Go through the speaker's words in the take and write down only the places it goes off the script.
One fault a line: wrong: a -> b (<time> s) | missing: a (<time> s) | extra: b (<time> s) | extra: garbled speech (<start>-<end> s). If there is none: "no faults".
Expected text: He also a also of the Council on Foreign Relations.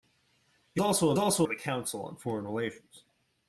no faults